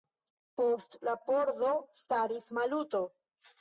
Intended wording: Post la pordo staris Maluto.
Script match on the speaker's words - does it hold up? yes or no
yes